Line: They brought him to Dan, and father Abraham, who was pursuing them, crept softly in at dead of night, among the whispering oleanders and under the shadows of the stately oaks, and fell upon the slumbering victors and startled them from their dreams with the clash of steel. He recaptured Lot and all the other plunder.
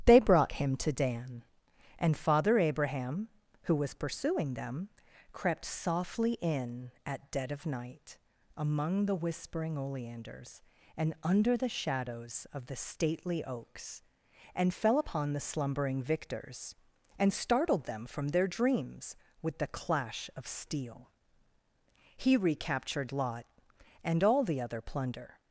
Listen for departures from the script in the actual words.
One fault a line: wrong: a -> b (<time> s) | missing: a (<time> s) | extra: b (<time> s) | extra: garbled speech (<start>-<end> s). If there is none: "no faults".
no faults